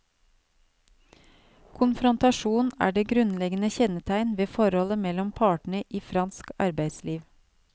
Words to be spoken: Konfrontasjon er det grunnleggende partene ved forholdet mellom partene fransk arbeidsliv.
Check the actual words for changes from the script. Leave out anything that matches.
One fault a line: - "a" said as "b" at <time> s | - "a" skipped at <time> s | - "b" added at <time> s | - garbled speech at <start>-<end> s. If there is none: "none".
- "partene" said as "kjennetegn" at 3.8 s
- "i" added at 5.9 s